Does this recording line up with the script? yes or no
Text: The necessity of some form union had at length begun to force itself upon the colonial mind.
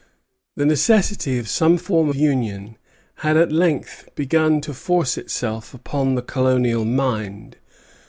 yes